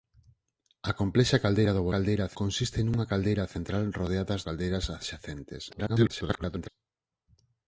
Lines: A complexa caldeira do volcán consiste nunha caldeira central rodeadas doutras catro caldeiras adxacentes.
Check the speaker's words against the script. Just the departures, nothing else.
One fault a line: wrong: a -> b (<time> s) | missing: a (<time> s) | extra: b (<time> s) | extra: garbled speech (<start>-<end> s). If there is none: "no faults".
wrong: volcán -> caldeira (1.9 s)
missing: doutras catro (4.4 s)
extra: garbled speech (5.7-6.7 s)